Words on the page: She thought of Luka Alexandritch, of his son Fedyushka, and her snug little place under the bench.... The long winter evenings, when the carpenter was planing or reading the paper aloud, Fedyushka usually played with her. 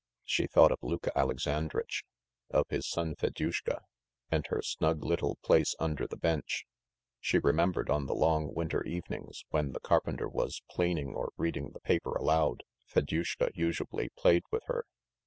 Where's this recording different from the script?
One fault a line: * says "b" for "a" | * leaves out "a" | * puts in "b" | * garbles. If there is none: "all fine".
* puts in "She remembered on"